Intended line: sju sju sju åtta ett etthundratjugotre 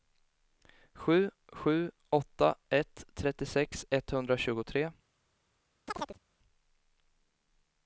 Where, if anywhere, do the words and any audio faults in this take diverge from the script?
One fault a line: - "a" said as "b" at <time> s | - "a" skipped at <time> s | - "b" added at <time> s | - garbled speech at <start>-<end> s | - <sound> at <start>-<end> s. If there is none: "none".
- "sju" skipped at 1.9 s
- "trettiosex" added at 3.1 s
- chirp at 5.9-6.2 s